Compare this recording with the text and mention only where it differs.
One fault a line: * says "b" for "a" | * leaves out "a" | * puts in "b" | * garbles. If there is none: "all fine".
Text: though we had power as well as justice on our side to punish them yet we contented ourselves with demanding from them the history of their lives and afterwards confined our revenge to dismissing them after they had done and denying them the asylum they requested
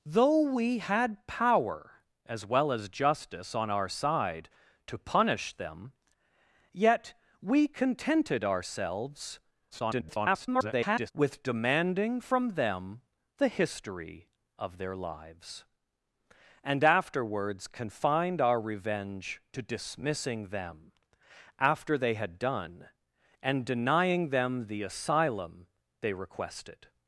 * garbles